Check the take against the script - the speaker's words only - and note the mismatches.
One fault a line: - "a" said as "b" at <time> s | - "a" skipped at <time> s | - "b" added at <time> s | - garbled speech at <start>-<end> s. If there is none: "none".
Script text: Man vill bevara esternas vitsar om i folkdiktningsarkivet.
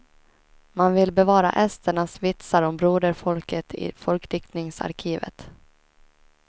- "broderfolket" added at 2.8 s